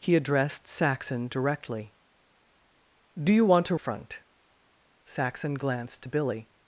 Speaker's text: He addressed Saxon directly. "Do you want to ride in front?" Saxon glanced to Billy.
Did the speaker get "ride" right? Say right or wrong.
wrong